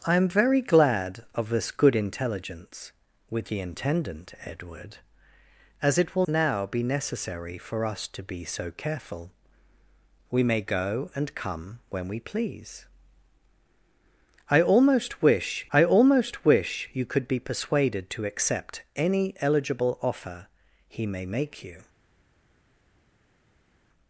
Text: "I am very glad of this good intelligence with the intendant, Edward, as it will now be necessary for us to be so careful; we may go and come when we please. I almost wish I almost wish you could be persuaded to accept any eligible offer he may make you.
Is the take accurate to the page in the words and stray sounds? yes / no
yes